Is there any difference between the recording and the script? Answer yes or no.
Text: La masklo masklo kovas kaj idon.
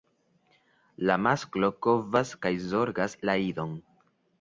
yes